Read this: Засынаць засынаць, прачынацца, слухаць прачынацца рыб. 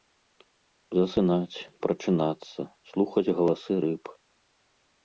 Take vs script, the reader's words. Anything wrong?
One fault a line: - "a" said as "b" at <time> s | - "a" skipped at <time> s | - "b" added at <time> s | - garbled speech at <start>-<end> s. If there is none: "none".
- "засынаць" skipped at 1.6 s
- "прачынацца" said as "галасы" at 3.4 s